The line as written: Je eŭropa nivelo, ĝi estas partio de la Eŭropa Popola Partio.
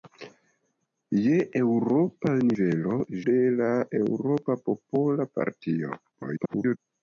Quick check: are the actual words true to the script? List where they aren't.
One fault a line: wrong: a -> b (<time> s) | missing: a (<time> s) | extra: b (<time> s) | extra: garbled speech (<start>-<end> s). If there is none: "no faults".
missing: ĝi estas partio (3.0 s)
extra: garbled speech (6.1-6.8 s)